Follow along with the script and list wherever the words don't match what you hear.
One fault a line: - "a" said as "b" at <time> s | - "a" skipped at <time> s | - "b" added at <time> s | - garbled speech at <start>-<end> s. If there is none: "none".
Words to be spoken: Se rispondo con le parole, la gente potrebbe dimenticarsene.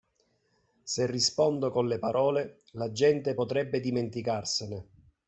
none